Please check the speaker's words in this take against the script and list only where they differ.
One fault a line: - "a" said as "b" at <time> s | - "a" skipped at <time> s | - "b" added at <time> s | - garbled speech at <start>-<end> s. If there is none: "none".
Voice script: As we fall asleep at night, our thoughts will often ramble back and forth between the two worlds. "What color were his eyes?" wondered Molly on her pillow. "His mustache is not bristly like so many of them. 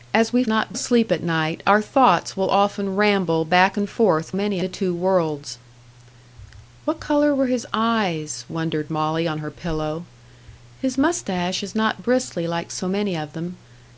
- "fall" said as "not" at 0.5 s
- "between" said as "many" at 4.3 s